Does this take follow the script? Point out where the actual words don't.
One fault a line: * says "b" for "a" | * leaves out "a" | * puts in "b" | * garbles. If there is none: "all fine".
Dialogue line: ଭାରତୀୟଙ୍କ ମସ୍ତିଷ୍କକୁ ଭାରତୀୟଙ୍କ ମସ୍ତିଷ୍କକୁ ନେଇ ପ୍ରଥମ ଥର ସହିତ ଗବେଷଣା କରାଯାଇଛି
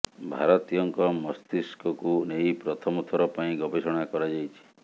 * leaves out "ଭାରତୀୟଙ୍କ ମସ୍ତିଷ୍କକୁ"
* says "ପାଇଁ" for "ସହିତ"